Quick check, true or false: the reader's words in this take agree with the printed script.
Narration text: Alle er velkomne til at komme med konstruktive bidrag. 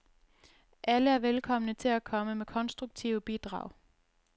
true